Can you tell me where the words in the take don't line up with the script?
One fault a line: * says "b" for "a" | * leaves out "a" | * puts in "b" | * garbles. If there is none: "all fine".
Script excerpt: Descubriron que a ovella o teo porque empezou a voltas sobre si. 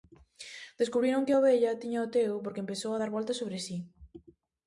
* puts in "tiña"
* puts in "dar"